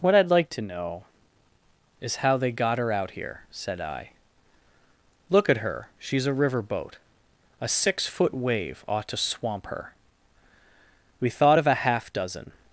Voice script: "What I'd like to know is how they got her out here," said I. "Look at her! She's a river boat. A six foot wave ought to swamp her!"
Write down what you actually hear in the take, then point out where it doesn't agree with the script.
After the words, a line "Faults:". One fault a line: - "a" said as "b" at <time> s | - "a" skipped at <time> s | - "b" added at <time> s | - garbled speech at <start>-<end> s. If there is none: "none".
"What I'd like to know is how they got her out here," said I. "Look at her! She's a river boat. A six foot wave ought to swamp her!" We thought of a half dozen
Faults:
- "We thought of a half dozen" added at 11.2 s